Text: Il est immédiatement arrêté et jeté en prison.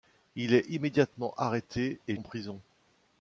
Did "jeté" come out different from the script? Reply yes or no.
yes